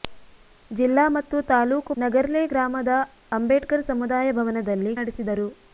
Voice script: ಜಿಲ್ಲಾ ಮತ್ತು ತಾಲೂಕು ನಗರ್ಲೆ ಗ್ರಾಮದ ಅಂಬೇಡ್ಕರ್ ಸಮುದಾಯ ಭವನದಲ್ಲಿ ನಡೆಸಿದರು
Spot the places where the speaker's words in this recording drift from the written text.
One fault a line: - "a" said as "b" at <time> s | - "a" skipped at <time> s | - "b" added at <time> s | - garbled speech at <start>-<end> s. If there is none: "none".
none